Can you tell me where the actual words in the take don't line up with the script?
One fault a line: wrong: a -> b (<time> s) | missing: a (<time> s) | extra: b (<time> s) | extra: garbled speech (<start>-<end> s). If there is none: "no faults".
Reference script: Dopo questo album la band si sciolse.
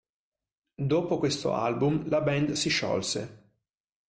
no faults